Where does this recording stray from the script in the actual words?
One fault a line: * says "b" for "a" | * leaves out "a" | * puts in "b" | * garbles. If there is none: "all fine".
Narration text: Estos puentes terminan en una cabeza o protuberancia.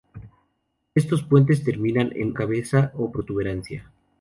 * leaves out "una"